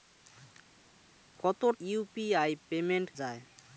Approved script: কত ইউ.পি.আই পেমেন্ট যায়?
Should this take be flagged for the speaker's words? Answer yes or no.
no